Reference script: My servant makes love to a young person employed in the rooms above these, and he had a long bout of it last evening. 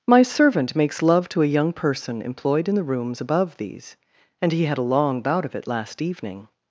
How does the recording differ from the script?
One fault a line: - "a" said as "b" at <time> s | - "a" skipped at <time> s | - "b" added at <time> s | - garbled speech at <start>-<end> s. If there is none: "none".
none